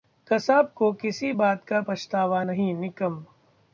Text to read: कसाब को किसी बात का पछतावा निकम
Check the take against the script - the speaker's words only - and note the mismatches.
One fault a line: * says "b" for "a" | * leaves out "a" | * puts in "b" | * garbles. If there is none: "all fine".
* puts in "नहीं"